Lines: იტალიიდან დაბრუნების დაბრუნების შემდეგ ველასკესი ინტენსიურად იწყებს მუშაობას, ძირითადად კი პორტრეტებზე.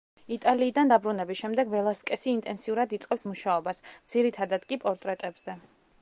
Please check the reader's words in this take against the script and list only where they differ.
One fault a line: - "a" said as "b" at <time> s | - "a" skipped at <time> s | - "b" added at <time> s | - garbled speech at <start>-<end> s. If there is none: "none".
- "დაბრუნების" skipped at 1.4 s